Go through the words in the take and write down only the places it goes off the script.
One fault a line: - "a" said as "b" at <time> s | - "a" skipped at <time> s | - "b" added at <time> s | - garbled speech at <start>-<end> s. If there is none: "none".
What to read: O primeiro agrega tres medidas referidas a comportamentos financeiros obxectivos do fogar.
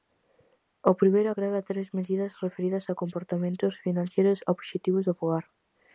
none